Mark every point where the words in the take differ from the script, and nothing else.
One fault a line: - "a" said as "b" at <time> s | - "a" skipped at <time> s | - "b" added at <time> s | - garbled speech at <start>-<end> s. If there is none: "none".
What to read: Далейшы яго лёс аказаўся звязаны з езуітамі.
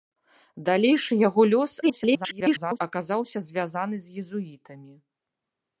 - garbled speech at 1.8-2.8 s